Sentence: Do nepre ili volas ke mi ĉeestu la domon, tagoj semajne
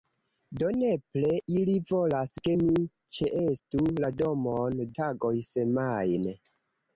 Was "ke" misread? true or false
false